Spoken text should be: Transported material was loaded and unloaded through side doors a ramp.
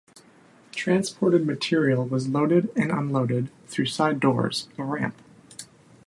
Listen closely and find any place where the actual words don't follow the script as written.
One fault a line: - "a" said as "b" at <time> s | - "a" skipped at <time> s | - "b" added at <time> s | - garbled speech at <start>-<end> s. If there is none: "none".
none